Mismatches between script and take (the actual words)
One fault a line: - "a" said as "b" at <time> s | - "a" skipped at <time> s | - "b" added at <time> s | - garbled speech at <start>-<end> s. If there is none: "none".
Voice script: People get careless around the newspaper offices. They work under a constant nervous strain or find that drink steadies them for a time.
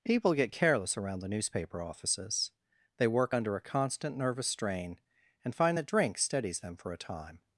- "or" said as "and" at 5.4 s